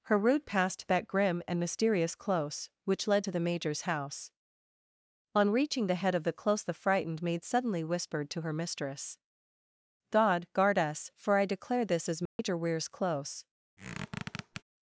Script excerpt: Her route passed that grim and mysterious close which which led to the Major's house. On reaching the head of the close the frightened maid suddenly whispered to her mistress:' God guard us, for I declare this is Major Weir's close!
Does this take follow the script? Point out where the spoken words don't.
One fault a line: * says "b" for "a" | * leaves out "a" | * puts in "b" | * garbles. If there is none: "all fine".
* leaves out "which"